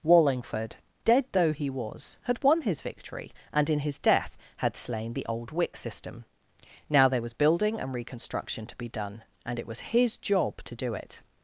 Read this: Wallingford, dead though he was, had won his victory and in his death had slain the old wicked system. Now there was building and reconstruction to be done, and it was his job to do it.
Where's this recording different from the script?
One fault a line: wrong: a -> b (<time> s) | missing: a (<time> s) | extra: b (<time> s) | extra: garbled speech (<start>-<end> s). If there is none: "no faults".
wrong: wicked -> wick (5.5 s)